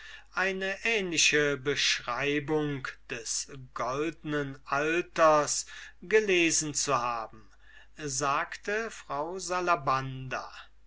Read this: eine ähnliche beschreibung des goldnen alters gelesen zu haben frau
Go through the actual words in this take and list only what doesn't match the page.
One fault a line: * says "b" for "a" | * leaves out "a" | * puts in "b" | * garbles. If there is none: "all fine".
* puts in "sagte"